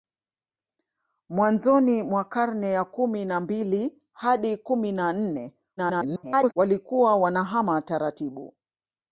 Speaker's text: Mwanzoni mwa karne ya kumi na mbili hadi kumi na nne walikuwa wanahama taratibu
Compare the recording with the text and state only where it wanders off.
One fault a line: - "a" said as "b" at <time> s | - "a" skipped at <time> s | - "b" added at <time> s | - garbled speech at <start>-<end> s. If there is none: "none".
- garbled speech at 5.8-6.5 s